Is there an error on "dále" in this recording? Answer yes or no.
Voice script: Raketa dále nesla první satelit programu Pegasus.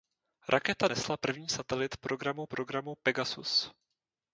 yes